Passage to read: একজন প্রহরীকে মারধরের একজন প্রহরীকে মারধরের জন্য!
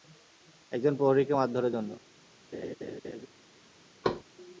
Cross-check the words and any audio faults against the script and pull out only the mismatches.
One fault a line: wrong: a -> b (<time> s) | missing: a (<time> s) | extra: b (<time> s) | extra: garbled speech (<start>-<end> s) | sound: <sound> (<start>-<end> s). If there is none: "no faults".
missing: একজন প্রহরীকে মারধরের (1.7 s)
sound: laugh (2.5-3.3 s)
sound: thud (4.0-4.2 s)